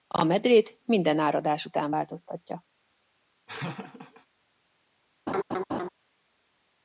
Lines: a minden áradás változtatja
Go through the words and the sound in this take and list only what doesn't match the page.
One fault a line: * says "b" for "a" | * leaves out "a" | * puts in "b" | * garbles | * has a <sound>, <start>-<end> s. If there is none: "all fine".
* puts in "medrét"
* puts in "után"
* has a laugh, 3.5-4.3 s
* has a laugh, 5.3-5.9 s